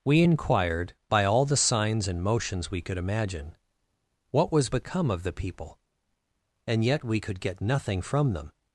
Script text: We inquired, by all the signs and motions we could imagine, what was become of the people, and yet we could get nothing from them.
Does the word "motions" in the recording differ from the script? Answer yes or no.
no